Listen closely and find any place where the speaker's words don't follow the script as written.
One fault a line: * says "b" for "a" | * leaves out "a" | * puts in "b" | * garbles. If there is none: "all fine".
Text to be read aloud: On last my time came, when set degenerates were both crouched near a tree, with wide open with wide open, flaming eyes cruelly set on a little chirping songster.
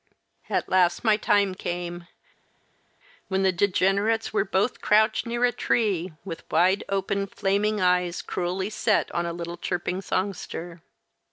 * says "At" for "On"
* says "the" for "set"
* leaves out "with wide open"